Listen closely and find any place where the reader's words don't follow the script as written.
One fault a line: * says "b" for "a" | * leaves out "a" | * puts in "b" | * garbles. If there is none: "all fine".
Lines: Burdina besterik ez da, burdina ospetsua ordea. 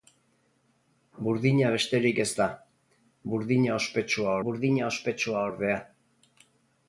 * puts in "burdina ospetsua"